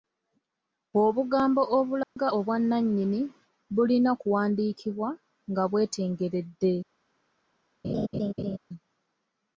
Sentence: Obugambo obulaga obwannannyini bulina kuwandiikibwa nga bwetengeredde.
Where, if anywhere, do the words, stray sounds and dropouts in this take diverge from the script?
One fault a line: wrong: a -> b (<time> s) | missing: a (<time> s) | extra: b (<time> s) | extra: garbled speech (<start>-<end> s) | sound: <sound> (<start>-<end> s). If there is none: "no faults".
sound: dropout (2.0-2.2 s)
sound: laugh (7.8-8.6 s)